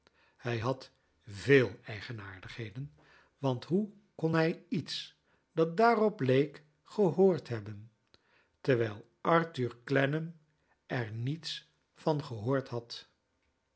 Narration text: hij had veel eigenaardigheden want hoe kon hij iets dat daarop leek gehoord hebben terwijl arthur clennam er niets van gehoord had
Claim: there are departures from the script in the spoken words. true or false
false